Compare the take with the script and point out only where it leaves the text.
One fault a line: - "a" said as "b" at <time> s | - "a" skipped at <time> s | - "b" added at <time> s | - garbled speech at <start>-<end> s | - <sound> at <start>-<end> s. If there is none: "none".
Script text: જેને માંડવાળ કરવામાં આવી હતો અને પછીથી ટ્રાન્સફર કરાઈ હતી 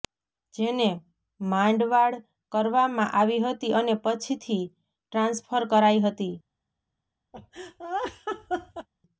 - "હતો" said as "હતી" at 3.5 s
- laugh at 7.3-8.9 s